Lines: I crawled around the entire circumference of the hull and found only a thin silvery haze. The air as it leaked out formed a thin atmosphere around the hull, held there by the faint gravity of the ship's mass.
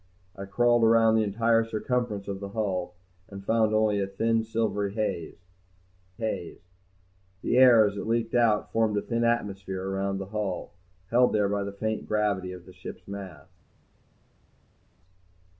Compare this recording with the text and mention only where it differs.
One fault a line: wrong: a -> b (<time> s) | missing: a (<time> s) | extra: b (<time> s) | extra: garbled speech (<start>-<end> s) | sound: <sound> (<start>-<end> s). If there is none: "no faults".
extra: haze (6.2 s)